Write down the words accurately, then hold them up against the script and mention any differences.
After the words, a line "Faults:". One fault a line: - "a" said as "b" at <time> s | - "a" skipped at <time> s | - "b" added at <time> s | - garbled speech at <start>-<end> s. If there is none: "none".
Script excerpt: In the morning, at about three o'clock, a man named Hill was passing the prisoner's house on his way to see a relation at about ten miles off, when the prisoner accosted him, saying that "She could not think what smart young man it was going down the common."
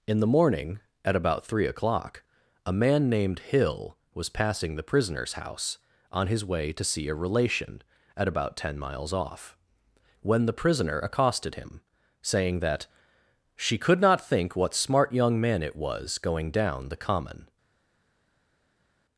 In the morning, at about three o'clock, a man named Hill was passing the prisoner's house on his way to see a relation at about ten miles off, when the prisoner accosted him, saying that "She could not think what smart young man it was going down the common."
Faults:
none